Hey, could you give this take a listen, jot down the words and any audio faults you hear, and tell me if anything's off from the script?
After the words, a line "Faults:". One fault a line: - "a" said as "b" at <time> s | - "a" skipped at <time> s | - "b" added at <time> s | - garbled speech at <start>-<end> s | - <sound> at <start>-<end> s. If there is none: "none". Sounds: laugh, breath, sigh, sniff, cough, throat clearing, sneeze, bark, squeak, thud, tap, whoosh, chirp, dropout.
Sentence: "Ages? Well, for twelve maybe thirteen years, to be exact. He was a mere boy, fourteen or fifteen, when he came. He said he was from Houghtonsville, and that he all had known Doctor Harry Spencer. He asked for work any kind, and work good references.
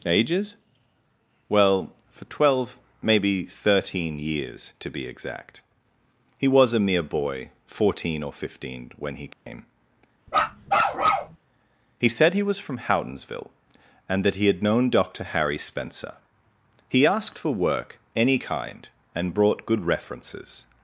"Ages? Well, for twelve maybe thirteen years, to be exact. He was a mere boy, fourteen or fifteen, when he came. He said he was from Houghtonsville, and that he had known Doctor Harry Spencer. He asked for work any kind, and brought good references.
Faults:
- dropout at 9.3-9.5 s
- bark at 10.3-11.4 s
- "all" skipped at 14.5 s
- "work" said as "brought" at 19.3 s